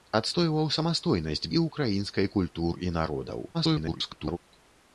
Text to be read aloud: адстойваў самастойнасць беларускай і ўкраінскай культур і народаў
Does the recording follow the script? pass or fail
fail